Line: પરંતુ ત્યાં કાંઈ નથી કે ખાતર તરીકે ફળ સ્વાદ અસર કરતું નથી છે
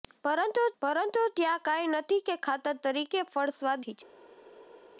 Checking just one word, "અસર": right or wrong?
wrong